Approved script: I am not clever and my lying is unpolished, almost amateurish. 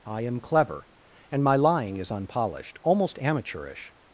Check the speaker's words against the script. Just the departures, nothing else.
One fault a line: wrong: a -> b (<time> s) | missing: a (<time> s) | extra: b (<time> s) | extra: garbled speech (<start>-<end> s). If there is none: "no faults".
missing: not (0.4 s)